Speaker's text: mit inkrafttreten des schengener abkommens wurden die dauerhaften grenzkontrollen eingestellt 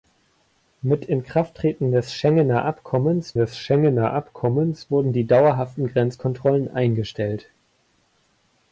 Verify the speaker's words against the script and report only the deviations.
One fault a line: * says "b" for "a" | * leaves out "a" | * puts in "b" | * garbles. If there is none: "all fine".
* puts in "des schengener abkommens"